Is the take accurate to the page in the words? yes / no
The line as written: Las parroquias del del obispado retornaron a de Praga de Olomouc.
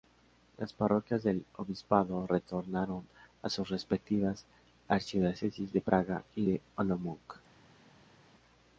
no